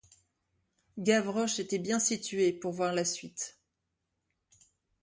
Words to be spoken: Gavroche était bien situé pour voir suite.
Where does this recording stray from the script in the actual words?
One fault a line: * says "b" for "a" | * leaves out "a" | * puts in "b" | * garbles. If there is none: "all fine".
* puts in "la"